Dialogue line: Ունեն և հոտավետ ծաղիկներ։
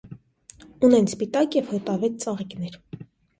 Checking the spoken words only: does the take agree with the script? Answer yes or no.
no